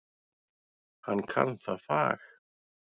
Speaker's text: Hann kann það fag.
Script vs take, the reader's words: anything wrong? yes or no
no